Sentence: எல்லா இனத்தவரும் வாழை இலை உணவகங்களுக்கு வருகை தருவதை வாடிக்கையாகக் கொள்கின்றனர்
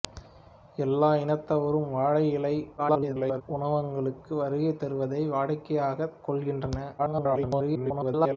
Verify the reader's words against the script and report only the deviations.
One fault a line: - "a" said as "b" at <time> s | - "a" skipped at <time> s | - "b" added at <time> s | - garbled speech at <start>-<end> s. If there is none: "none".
- garbled speech at 2.8-3.4 s
- garbled speech at 7.0-8.4 s